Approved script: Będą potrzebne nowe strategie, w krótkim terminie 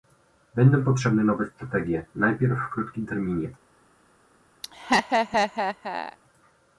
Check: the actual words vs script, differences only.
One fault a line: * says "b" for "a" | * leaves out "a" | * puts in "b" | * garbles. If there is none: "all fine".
* puts in "najpierw"